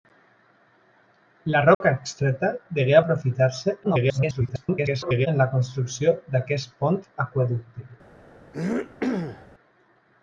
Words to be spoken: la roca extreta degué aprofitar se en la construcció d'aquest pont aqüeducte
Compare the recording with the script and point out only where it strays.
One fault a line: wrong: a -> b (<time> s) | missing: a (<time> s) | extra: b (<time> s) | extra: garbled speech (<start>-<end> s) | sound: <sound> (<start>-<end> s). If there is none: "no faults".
sound: dropout (1.7-1.8 s)
extra: garbled speech (3.8-5.3 s)
sound: throat clearing (8.5-9.5 s)